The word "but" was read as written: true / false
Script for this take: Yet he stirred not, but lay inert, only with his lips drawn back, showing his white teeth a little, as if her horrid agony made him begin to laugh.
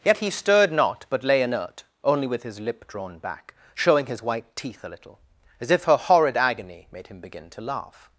true